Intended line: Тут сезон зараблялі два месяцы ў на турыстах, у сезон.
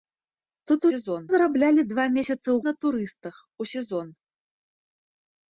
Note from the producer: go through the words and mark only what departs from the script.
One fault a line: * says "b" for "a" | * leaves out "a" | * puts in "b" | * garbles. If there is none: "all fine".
all fine